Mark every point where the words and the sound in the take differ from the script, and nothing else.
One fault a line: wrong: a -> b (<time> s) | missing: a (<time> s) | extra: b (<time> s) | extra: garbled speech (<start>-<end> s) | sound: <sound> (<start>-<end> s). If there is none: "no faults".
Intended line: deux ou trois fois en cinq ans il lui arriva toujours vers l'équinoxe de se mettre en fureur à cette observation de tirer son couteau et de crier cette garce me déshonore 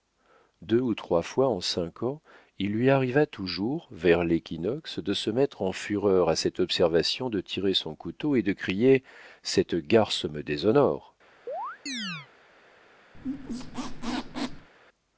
sound: chirp (11.5-12.3 s)
sound: squeak (13.1-14.7 s)